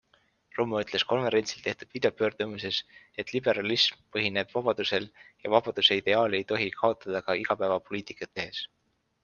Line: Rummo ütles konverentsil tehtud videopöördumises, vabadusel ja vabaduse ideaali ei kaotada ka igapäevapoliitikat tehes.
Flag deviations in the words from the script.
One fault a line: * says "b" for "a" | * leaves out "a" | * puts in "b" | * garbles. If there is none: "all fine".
* puts in "et liberalism põhineb"
* puts in "tohi"